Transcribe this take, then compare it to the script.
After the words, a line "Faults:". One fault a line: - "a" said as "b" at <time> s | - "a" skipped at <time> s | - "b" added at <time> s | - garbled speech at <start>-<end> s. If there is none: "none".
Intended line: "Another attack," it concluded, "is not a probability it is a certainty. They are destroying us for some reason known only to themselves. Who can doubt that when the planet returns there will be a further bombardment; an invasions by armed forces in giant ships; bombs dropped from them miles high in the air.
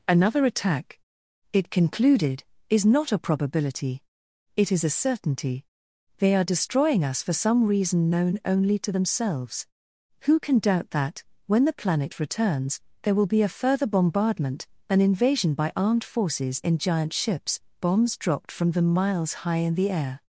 "Another attack," it concluded, "is not a probability it is a certainty. They are destroying us for some reason known only to themselves. Who can doubt that when the planet returns there will be a further bombardment; an invasion by armed forces in giant ships; bombs dropped from them miles high in the air.
Faults:
- "invasions" said as "invasion" at 15.0 s